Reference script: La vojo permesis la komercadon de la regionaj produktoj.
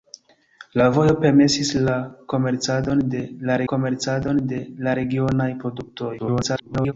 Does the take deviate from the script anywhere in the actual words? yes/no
yes